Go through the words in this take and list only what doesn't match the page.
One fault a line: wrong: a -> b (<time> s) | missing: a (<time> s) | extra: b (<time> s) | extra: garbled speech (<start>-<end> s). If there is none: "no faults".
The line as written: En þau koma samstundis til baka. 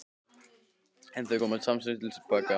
no faults